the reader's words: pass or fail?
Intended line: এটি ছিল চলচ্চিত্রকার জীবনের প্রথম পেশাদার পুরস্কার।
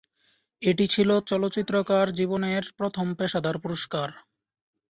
pass